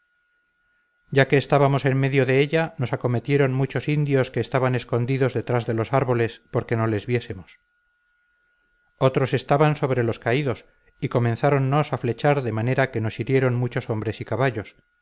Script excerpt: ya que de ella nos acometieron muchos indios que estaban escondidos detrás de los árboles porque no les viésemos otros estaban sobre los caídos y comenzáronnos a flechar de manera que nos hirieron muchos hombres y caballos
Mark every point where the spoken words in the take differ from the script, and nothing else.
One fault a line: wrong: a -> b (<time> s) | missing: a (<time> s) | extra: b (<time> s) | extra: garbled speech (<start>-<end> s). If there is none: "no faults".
extra: estábamos en medio (1.4 s)